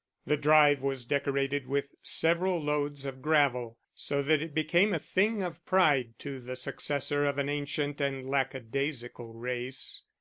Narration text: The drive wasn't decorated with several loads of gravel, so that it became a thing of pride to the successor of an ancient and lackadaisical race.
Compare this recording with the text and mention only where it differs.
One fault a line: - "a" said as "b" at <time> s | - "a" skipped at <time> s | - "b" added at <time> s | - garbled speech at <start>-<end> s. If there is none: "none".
- "wasn't" said as "was" at 0.8 s